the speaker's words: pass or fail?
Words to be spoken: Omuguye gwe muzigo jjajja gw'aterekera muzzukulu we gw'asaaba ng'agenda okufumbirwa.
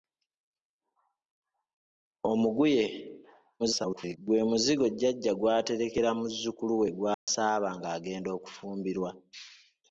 fail